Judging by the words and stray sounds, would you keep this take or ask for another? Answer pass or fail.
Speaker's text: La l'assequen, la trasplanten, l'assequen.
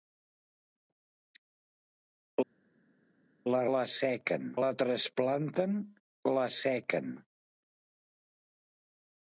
pass